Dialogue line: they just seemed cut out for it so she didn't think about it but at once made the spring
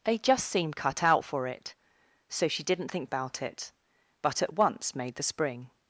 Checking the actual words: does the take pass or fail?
pass